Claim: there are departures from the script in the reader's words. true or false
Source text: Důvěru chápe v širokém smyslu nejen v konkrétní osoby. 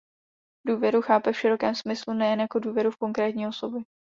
true